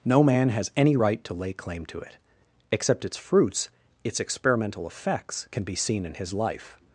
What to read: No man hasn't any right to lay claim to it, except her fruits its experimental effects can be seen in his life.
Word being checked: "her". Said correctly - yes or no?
no